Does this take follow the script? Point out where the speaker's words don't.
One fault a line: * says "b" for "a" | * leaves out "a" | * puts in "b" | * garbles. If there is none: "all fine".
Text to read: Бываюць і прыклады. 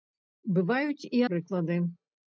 all fine